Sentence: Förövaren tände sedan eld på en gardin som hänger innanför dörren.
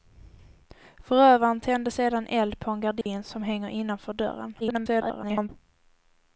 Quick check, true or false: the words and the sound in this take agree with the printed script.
false